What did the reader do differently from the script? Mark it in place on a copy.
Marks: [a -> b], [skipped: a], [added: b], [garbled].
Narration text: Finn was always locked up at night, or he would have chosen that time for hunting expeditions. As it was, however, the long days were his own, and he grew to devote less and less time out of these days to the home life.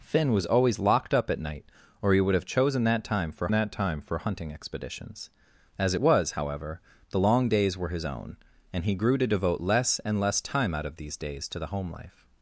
Finn was always locked up at night, or he would have chosen that time for [added: that time for] hunting expeditions. As it was, however, the long days were his own, and he grew to devote less and less time out of these days to the home life.